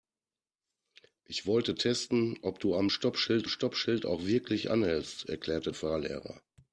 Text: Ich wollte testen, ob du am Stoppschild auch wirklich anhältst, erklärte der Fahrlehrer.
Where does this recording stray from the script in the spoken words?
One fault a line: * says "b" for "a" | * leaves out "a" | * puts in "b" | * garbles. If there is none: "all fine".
* puts in "Stoppschild"
* leaves out "der"